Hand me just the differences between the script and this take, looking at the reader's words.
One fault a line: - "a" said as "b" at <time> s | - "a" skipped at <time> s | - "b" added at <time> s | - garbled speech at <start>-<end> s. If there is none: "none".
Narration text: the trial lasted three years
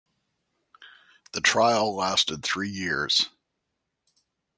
none